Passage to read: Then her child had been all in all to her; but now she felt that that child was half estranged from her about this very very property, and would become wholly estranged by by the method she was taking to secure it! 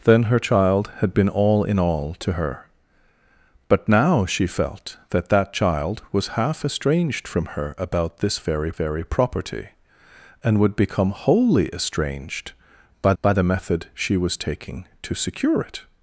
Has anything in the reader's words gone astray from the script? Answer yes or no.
no